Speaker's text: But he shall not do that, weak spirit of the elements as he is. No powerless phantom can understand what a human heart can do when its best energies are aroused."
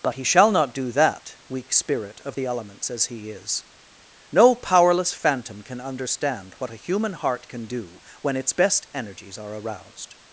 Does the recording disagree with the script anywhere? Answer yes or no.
no